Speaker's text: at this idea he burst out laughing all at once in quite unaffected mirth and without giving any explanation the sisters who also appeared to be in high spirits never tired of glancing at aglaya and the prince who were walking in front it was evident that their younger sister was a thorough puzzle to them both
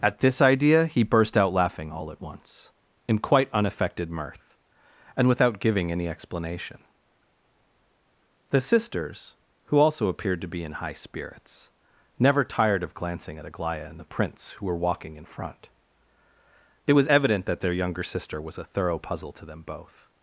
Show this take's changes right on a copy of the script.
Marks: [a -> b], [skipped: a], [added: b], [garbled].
at this idea he burst out laughing all at once in quite unaffected mirth and without giving any explanation the sisters who also appeared to be in high spirits never tired of glancing at aglaya and the prince who were walking in front it was evident that their younger sister was a thorough puzzle to them both